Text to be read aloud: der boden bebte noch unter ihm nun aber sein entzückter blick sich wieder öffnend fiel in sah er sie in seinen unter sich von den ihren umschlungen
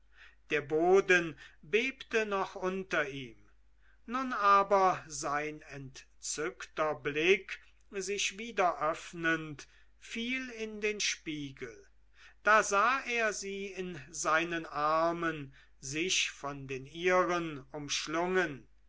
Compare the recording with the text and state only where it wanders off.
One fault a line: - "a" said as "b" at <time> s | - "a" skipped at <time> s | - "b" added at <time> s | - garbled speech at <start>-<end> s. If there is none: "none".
- "den spiegel da" added at 10.8 s
- "unter" said as "armen" at 14.7 s